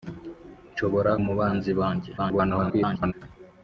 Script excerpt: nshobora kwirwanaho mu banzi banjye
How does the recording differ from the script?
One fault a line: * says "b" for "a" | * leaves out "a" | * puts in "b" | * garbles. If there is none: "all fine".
* leaves out "kwirwanaho"
* garbles